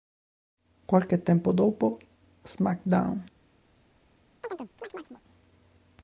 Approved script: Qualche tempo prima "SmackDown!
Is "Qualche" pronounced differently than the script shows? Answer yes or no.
no